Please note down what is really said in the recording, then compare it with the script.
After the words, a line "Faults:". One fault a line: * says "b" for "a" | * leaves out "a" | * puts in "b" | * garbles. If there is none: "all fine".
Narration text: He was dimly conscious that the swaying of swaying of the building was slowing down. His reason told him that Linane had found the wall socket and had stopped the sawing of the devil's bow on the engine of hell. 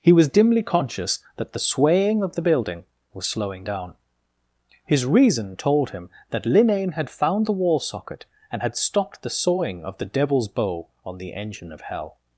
He was dimly conscious that the swaying of the building was slowing down. His reason told him that Linane had found the wall socket and had stopped the sawing of the devil's bow on the engine of hell.
Faults:
* leaves out "swaying of"